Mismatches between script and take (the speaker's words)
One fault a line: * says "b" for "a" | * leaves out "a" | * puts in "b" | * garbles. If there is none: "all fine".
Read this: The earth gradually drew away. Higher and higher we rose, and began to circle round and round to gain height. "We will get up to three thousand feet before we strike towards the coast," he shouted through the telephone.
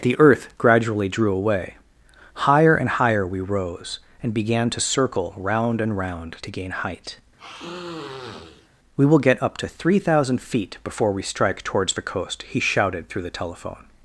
all fine